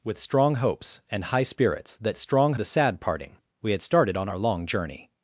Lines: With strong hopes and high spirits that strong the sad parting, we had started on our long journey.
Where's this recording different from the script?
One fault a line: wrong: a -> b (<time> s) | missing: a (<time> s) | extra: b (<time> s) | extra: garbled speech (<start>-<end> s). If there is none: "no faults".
no faults